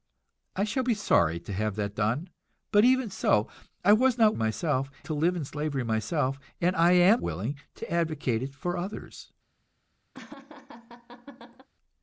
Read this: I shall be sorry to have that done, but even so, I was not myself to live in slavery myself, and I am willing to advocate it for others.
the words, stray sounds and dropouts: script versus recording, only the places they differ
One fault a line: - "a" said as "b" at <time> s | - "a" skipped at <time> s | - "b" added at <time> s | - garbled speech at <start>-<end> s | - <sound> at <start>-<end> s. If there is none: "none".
- laugh at 10.1-11.7 s